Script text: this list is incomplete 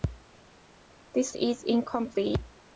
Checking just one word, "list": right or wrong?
wrong